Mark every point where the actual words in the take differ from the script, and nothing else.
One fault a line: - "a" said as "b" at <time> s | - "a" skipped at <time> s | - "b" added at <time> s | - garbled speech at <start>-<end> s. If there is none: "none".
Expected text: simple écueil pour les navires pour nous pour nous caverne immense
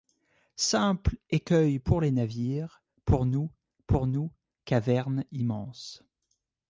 none